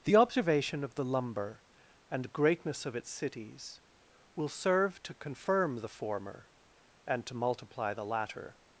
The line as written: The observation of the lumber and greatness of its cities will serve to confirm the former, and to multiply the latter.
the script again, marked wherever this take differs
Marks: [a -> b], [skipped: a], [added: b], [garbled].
The observation of the lumber and greatness of its cities will serve to confirm the former, and to multiply the latter.